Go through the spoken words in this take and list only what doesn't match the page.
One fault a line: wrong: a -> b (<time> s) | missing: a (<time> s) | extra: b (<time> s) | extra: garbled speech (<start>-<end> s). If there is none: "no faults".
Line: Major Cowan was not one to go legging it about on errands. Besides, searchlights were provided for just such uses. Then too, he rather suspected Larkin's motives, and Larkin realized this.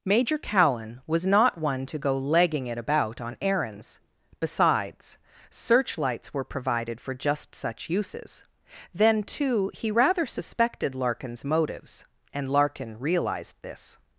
no faults